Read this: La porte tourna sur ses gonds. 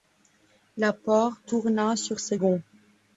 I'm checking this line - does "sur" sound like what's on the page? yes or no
yes